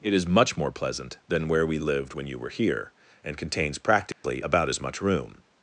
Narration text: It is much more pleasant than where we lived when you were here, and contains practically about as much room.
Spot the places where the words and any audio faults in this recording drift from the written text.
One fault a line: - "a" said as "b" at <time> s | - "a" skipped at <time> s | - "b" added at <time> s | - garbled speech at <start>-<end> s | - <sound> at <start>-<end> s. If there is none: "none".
- dropout at 4.1-4.2 s